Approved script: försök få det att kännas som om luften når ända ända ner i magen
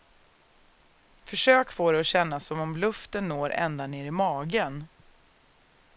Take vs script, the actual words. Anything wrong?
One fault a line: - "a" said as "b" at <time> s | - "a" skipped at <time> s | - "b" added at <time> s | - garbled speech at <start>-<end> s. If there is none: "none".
- "ända" skipped at 3.9 s